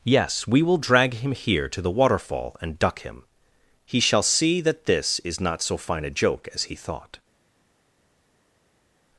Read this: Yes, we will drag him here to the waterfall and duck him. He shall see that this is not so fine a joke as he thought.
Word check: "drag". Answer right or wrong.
right